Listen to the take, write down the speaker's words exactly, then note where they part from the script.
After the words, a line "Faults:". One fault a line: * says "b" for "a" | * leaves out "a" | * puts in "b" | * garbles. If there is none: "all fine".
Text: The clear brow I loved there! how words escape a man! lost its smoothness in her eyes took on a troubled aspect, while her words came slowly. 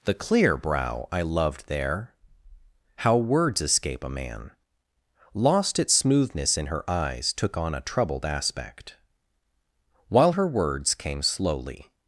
The clear brow I loved there! how words escape a man! lost its smoothness in her eyes took on a troubled aspect, while her words came slowly.
Faults:
all fine